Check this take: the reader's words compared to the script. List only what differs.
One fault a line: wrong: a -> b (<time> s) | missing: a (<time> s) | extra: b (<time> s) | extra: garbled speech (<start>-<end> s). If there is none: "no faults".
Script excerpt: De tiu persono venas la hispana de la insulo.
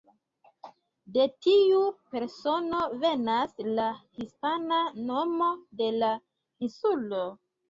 extra: nomo (5.1 s)